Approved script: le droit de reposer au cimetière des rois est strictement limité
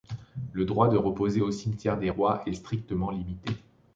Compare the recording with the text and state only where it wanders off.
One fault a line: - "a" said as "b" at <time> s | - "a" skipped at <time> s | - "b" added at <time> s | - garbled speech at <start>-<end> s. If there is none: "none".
none